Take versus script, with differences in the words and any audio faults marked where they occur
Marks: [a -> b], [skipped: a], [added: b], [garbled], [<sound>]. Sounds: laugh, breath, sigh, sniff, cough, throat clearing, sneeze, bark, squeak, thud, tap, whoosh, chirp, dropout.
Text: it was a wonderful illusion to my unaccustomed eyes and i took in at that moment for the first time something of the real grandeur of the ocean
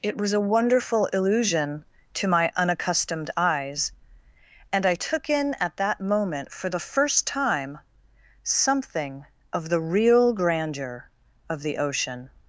it was a wonderful illusion to my unaccustomed eyes and i took in at that moment for the first time something of the real grandeur of the ocean